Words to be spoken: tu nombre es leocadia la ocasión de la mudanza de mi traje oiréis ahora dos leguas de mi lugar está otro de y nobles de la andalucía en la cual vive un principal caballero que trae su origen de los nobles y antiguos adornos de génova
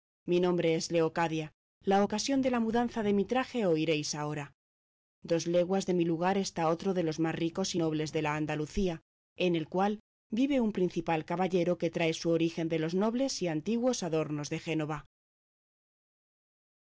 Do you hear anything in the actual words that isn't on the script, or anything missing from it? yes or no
yes